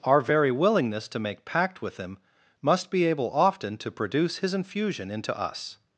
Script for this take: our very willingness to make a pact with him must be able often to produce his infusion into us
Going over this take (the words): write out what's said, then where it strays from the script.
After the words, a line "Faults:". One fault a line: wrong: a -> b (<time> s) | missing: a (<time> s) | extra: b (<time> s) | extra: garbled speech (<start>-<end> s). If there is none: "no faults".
our very willingness to make pact with him must be able often to produce his infusion into us
Faults:
missing: a (1.4 s)